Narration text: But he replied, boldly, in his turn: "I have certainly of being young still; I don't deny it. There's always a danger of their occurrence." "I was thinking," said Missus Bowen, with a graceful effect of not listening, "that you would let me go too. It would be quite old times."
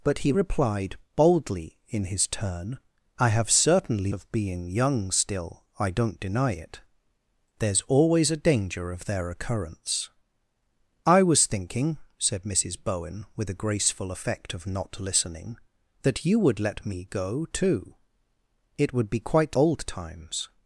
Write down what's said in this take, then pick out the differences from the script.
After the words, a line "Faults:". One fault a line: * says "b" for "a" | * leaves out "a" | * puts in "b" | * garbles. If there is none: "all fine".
But he replied, boldly, in his turn: "I have certainly of being young still; I don't deny it. There's always a danger of their occurrence." "I was thinking," said Missus Bowen, with a graceful effect of not listening, "that you would let me go too. It would be quite old times."
Faults:
all fine